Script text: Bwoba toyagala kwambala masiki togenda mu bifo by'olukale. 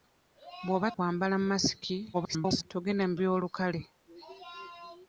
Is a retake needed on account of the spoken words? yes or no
yes